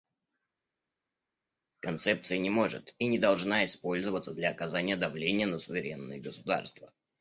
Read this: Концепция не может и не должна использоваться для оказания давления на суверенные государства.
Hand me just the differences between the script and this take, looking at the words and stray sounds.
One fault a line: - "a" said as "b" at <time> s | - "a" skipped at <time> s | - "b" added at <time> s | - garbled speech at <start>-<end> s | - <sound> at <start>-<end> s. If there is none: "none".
none